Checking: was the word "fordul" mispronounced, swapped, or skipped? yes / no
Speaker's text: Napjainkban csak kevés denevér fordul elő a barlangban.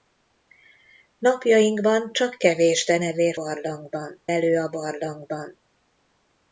yes